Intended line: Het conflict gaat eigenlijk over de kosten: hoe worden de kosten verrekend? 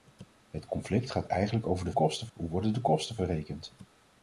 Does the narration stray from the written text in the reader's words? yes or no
no